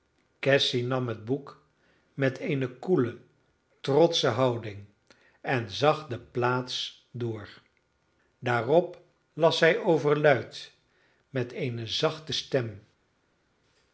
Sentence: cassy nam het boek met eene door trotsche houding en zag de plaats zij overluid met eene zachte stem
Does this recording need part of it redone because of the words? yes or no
yes